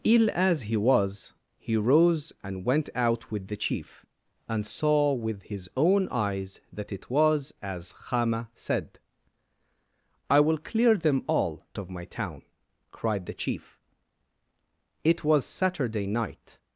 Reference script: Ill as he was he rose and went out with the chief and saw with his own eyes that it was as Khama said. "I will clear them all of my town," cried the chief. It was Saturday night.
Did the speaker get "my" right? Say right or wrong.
right